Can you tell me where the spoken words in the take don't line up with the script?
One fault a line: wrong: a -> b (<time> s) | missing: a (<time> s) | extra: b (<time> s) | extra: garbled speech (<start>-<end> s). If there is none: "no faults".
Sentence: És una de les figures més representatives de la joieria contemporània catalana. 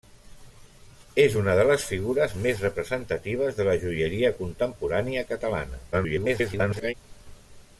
extra: garbled speech (5.9-6.9 s)